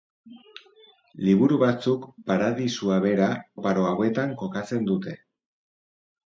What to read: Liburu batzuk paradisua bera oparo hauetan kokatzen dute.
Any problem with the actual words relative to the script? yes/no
no